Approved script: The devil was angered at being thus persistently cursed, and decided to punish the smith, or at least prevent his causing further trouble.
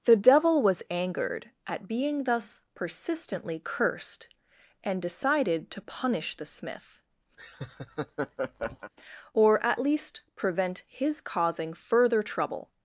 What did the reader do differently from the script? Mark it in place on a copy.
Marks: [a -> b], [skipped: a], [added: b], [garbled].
The devil was angered at being thus persistently cursed, and decided to punish the smith, or at least prevent his causing further trouble.